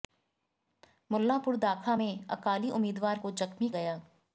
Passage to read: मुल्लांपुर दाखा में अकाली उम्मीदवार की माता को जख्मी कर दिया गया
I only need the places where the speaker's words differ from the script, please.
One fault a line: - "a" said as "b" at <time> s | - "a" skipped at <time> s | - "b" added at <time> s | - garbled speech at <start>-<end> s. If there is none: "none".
- "की माता" skipped at 3.2 s
- "कर दिया" skipped at 3.7 s